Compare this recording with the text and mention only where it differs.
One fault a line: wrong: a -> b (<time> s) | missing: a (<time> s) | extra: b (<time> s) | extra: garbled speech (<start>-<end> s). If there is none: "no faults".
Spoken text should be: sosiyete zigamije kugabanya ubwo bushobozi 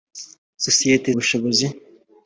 missing: zigamije kugabanya ubwo (1.1 s)